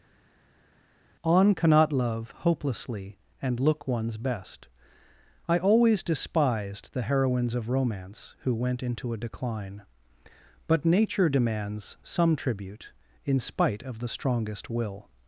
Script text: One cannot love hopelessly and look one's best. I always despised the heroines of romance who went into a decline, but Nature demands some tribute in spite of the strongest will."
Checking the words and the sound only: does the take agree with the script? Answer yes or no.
no